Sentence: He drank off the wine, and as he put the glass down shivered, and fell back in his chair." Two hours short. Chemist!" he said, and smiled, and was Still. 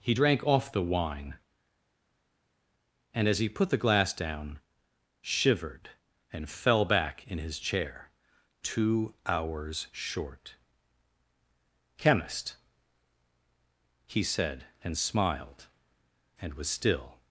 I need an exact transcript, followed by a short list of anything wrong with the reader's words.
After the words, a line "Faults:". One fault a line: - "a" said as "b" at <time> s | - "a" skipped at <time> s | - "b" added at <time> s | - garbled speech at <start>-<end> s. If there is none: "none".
He drank off the wine, and as he put the glass down shivered, and fell back in his chair." Two hours short. Chemist!" he said, and smiled, and was Still.
Faults:
none